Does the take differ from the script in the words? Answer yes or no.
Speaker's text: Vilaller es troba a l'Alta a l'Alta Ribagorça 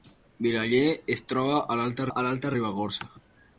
no